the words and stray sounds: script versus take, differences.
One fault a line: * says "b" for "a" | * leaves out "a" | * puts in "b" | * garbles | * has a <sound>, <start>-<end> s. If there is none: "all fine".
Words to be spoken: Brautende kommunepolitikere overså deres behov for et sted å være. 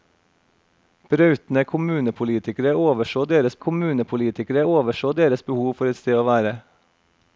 * puts in "kommunepolitikere overså deres"